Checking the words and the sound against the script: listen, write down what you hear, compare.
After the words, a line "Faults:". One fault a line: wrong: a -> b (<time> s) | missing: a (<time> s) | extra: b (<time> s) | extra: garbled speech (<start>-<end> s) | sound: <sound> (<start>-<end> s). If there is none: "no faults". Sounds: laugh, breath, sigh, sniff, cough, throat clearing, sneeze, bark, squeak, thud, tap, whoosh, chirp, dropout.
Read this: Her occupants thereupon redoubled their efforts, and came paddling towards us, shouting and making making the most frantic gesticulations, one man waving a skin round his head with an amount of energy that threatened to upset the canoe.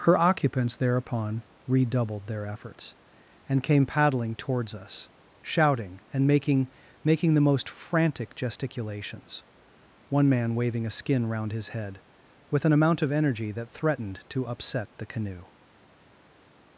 Her occupants thereupon redoubled their efforts, and came paddling towards us, shouting and making making the most frantic gesticulations, one man waving a skin round his head with an amount of energy that threatened to upset the canoe.
Faults:
no faults